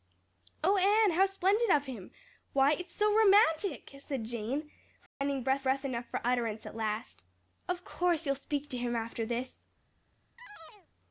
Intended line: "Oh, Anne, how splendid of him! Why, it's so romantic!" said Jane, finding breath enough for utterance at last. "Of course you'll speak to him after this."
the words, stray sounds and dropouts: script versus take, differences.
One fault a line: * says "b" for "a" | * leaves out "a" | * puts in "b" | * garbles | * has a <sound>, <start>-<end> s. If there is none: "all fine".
* has a dropout, 5.1-5.2 s
* puts in "breath"
* has a chirp, 10.4-10.9 s